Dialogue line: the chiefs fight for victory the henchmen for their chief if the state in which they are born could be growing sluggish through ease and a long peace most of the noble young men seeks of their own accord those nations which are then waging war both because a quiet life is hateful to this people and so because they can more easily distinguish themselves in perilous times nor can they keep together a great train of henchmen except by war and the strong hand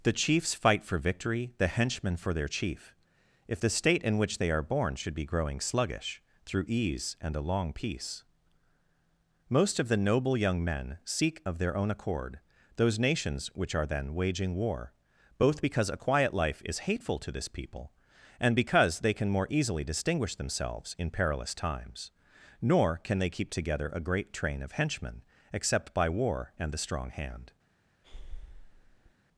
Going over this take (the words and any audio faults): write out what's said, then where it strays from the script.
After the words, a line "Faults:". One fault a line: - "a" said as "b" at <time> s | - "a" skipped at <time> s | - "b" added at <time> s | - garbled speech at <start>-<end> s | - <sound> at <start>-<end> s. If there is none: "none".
the chiefs fight for victory the henchmen for their chief if the state in which they are born should be growing sluggish through ease and a long peace most of the noble young men seek of their own accord those nations which are then waging war both because a quiet life is hateful to this people and because they can more easily distinguish themselves in perilous times nor can they keep together a great train of henchmen except by war and the strong hand
Faults:
- "could" said as "should" at 4.9 s
- "seeks" said as "seek" at 11.0 s
- "so" skipped at 18.5 s
- breath at 28.0-29.1 s